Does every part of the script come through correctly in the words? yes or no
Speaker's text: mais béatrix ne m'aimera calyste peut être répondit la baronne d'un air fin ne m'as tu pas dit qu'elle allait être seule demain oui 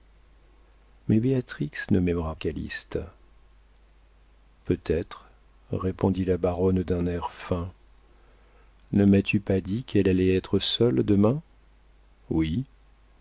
yes